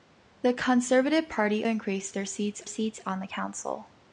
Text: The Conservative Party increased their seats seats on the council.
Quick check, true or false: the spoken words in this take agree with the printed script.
true